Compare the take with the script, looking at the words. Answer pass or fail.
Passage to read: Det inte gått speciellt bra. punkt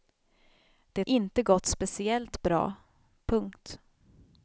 pass